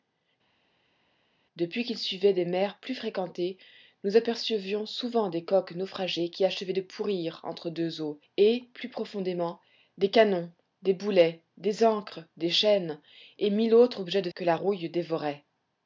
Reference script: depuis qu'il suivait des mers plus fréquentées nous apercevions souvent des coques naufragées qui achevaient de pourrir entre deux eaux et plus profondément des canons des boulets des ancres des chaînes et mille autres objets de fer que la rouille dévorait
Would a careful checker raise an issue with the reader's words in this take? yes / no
yes